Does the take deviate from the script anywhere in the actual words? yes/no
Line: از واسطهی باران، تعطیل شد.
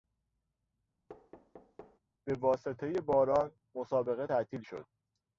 yes